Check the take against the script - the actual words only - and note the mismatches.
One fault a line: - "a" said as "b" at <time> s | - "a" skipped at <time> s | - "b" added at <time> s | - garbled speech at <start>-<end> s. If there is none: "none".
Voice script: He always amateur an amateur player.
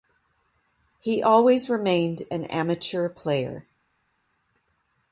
- "amateur" said as "remained" at 1.7 s